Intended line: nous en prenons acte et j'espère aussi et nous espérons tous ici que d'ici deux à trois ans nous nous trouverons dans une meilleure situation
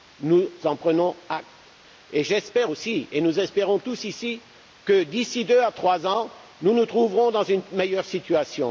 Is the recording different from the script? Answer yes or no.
no